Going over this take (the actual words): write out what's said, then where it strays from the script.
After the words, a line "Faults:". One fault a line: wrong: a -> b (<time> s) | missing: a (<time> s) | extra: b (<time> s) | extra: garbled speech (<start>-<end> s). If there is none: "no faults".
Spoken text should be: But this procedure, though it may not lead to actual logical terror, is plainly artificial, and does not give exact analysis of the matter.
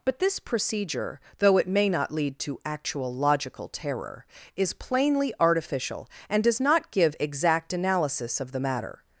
But this procedure, though it may not lead to actual logical terror, is plainly artificial, and does not give exact analysis of the matter.
Faults:
no faults